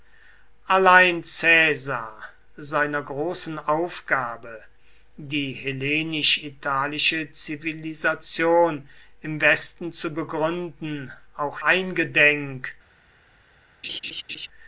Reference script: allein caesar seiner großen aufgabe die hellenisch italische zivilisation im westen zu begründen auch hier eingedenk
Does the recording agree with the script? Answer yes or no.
no